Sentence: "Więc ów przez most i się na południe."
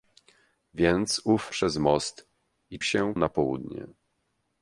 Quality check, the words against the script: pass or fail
pass